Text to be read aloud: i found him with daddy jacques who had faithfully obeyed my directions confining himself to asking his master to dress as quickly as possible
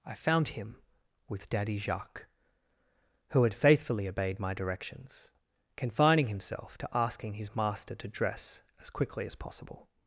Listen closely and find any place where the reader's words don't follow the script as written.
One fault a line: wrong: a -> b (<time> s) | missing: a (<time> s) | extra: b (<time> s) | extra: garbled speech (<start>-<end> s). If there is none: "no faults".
no faults